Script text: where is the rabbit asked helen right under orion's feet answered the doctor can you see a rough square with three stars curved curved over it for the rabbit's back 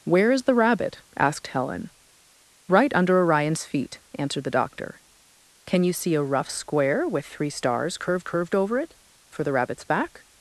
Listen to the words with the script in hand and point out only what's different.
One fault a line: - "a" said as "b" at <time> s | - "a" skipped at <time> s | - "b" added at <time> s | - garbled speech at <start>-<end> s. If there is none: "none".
none